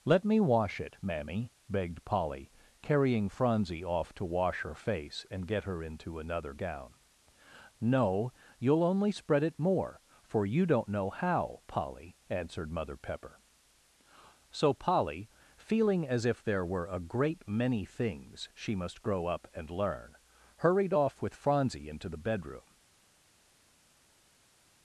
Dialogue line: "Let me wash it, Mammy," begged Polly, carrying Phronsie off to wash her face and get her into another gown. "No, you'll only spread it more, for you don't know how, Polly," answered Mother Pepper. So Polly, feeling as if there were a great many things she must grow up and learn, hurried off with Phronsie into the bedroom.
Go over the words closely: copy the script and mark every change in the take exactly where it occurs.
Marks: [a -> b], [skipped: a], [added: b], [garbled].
"Let me wash it, Mammy," begged Polly, carrying Phronsie off to wash her face and get her into another gown. "No, you'll only spread it more, for you don't know how, Polly," answered Mother Pepper. So Polly, feeling as if there were a great many things she must grow up and learn, hurried off with Phronsie into the bedroom.